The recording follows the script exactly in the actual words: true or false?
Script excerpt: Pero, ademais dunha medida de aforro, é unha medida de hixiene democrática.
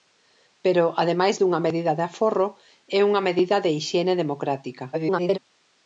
false